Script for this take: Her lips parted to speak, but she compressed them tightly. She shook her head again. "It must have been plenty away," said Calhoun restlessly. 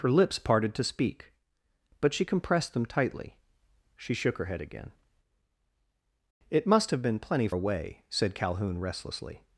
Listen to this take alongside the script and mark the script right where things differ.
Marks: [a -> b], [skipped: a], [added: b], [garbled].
Her lips parted to speak, but she compressed them tightly. She shook her head again. "It must have been plenty away," said Calhoun restlessly.